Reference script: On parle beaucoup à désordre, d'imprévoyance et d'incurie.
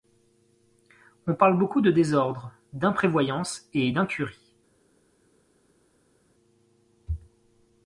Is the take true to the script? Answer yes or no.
no